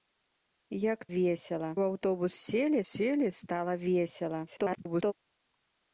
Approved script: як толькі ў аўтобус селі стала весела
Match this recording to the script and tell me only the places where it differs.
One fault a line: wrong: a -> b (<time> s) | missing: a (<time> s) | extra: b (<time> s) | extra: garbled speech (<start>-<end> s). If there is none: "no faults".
wrong: толькі -> весела (1.1 s)
extra: селі (2.9 s)
extra: garbled speech (4.5-5.1 s)